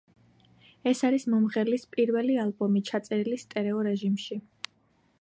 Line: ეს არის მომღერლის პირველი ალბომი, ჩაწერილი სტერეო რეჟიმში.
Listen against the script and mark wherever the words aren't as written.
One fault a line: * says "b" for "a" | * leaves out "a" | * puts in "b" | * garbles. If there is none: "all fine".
all fine